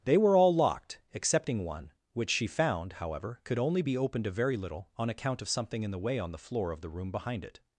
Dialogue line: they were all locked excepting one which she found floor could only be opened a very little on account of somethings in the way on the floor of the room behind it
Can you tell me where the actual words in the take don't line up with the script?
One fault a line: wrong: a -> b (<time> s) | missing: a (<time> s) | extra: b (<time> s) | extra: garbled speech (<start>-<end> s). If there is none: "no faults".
wrong: floor -> however (2.9 s)
wrong: somethings -> something (5.5 s)